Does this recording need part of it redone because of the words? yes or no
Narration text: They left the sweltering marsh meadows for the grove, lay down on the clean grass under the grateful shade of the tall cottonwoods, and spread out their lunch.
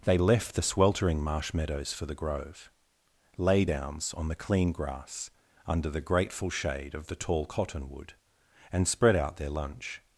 yes